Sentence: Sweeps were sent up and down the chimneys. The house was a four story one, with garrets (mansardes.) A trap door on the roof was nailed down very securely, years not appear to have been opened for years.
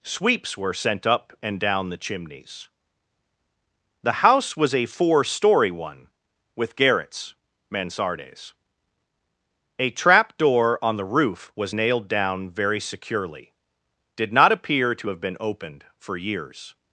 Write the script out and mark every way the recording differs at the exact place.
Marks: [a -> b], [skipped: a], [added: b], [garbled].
Sweeps were sent up and down the chimneys. The house was a four story one, with garrets (mansardes.) A trap door on the roof was nailed down very securely, [years -> did] not appear to have been opened for years.